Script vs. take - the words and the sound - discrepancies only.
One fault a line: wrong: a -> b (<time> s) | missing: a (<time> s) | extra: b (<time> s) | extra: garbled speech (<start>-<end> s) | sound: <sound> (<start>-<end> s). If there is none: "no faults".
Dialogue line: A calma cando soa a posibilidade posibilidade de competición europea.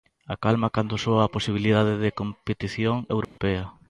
missing: posibilidade (1.9 s)
sound: dropout (3.2-3.4 s)